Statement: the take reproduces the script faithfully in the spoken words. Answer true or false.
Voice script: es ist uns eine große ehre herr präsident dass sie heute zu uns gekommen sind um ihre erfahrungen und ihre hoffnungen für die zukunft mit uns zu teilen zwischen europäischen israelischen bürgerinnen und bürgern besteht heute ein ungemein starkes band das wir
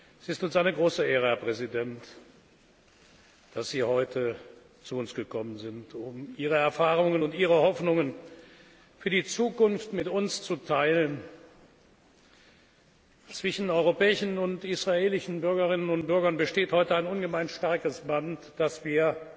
false